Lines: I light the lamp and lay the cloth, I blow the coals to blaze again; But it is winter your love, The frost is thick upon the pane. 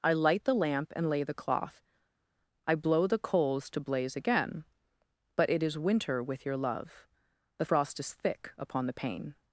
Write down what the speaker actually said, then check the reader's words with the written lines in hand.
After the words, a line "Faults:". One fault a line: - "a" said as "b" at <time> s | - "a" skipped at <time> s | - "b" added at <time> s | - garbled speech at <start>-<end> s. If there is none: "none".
I light the lamp and lay the cloth, I blow the coals to blaze again; But it is winter with your love, The frost is thick upon the pane.
Faults:
- "with" added at 6.2 s